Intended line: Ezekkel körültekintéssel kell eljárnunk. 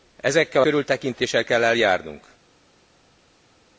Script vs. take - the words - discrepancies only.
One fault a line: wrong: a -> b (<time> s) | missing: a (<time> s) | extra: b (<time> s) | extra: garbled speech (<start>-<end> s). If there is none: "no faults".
no faults